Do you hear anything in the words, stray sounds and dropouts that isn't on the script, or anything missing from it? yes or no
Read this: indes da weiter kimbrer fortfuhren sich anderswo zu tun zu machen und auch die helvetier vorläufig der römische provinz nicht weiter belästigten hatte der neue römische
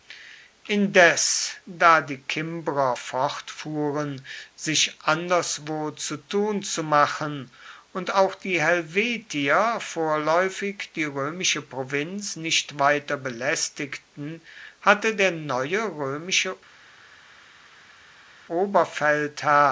yes